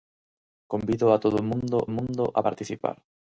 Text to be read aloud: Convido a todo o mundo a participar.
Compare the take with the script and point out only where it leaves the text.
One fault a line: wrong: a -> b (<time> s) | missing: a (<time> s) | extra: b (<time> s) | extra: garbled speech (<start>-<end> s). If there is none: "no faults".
extra: mundo (1.9 s)